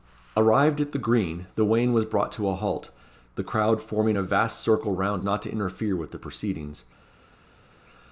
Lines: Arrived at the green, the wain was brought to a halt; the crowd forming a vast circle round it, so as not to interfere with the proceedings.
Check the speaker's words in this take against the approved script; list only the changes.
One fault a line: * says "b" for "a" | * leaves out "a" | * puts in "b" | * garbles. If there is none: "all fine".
* leaves out "it so as"